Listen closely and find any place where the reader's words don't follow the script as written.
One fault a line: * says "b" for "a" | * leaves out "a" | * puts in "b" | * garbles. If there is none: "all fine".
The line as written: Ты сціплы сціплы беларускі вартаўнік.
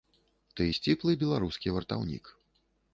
* leaves out "сціплы"